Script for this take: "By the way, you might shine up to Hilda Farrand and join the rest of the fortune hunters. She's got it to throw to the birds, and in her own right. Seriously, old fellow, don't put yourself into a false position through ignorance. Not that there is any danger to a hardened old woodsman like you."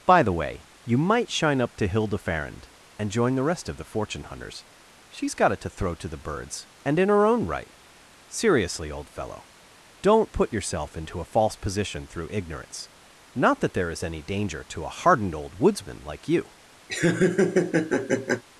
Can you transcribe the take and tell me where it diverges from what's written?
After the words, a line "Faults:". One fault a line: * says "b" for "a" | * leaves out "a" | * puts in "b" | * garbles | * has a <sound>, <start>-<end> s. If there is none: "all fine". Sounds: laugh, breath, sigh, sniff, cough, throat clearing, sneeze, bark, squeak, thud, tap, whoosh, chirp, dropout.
"By the way, you might shine up to Hilda Farrand and join the rest of the fortune hunters. She's got it to throw to the birds, and in her own right. Seriously, old fellow, don't put yourself into a false position through ignorance. Not that there is any danger to a hardened old woodsman like you."
Faults:
* has a laugh, 16.9-18.4 s